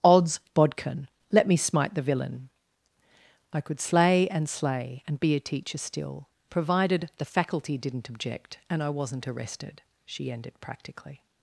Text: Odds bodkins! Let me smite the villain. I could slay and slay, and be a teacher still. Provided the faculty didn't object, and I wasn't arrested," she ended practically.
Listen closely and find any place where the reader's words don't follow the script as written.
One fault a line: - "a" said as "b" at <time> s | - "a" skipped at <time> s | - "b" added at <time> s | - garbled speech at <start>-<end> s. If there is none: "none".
- "bodkins" said as "bodkin" at 0.5 s